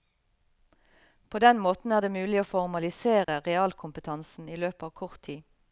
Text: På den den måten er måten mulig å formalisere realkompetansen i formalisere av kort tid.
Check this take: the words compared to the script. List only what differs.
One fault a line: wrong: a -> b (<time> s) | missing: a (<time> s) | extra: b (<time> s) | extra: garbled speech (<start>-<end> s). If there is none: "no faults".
missing: den (1.6 s)
wrong: måten -> det (2.0 s)
wrong: formalisere -> løpet (4.6 s)